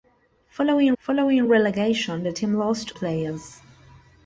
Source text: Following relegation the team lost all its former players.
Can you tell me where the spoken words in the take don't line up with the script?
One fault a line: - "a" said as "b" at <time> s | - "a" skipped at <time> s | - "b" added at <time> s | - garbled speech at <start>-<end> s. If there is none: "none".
- "following" added at 1.0 s
- "all its former" skipped at 2.9 s